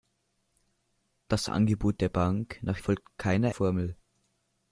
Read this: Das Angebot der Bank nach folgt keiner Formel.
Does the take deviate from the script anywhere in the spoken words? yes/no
no